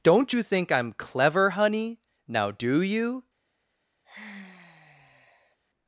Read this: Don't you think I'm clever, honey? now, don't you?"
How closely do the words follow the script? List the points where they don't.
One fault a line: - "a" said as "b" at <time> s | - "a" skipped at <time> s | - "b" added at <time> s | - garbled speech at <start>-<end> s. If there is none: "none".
- "don't" said as "do" at 2.6 s